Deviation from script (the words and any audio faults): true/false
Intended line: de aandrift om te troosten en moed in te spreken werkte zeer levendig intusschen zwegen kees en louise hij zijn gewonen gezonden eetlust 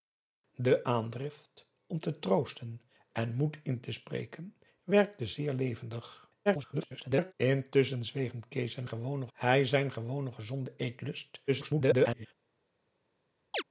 true